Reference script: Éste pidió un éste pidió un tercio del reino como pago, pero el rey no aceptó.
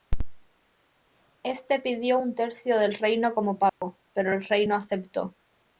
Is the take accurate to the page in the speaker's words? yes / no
no